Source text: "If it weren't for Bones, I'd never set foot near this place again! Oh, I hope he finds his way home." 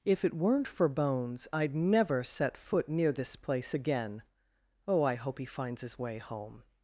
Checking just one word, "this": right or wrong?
right